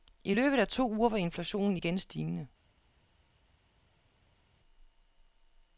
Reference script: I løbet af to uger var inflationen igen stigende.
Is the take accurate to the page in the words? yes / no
yes